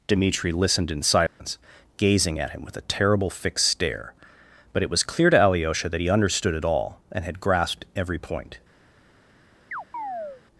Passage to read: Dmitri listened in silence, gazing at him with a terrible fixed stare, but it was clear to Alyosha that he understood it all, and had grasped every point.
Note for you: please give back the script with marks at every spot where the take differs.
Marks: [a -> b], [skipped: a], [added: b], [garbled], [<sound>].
Dmitri listened in silence, [dropout] gazing at him with a terrible fixed stare, but it was clear to Alyosha that he understood it all, and had grasped every point. [chirp]